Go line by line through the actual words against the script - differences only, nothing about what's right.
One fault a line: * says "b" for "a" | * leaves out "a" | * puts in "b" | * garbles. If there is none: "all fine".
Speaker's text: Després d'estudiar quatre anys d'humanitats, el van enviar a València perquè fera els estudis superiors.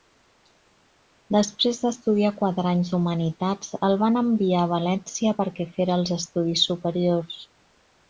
all fine